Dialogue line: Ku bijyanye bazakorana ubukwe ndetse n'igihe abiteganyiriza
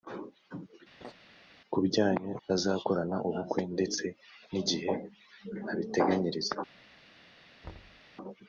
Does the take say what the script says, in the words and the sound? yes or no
no